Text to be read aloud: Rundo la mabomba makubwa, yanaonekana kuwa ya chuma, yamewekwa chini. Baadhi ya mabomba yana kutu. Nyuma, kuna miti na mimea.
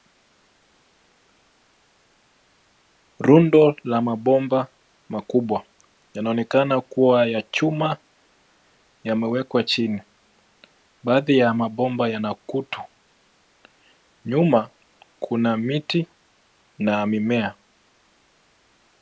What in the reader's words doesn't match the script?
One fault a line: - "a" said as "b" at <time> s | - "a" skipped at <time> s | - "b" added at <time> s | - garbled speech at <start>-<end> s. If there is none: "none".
none